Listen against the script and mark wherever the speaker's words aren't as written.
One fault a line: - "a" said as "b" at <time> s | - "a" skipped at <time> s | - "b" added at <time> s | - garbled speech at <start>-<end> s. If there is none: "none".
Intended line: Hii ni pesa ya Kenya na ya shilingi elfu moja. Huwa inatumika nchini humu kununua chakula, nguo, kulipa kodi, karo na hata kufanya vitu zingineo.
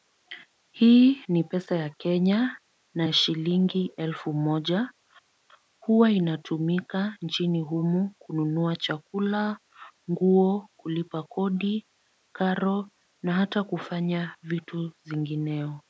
none